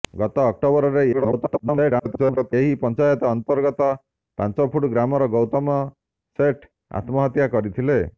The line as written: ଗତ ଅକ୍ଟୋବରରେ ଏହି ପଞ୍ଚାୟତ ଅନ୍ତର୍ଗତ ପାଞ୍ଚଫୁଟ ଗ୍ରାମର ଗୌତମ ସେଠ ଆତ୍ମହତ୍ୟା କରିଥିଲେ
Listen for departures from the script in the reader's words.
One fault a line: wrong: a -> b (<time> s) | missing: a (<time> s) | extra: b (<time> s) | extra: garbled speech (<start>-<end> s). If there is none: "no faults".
extra: garbled speech (1.1-2.5 s)